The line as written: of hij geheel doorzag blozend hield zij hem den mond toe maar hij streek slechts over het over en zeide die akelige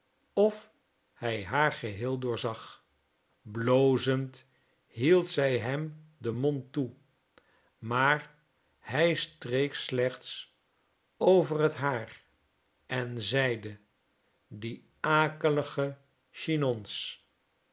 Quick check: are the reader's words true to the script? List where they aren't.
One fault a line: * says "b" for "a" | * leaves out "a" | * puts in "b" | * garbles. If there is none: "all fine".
* puts in "haar"
* says "haar" for "over"